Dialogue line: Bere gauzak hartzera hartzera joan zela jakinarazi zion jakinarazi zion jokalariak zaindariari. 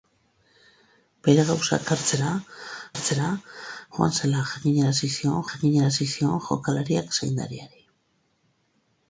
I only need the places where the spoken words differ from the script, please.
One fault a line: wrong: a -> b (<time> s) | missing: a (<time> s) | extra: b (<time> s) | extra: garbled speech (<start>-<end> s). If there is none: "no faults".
no faults